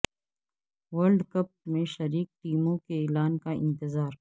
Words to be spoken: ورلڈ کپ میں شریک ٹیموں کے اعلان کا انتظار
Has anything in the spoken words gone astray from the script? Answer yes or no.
no